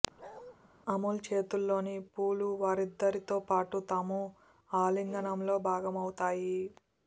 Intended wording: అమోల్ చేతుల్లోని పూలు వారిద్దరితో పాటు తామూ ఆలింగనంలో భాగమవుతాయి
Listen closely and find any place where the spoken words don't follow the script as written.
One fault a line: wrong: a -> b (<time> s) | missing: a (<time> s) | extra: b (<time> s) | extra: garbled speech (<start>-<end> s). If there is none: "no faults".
no faults